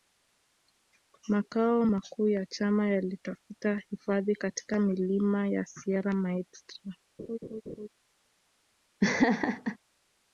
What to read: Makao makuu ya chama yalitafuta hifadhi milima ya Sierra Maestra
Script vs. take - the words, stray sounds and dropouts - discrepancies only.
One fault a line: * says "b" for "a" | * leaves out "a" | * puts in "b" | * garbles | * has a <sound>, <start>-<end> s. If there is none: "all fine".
* puts in "katika"
* has a laugh, 7.2-7.9 s
* has a laugh, 9.0-9.8 s